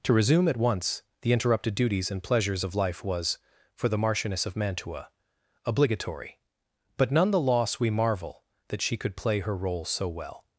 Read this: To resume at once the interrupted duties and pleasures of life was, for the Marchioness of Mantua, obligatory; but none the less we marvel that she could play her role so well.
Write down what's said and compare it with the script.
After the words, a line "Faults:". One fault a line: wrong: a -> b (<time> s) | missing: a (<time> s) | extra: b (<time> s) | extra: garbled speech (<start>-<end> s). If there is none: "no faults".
To resume at once the interrupted duties and pleasures of life was, for the Marchioness of Mantua, obligatory; but none the loss we marvel that she could play her role so well.
Faults:
wrong: less -> loss (7.4 s)